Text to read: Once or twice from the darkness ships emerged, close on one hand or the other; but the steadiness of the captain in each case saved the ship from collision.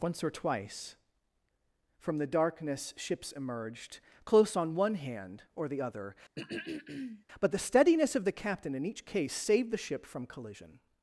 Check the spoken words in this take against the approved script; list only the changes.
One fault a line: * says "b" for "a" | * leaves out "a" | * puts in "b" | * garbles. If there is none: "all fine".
all fine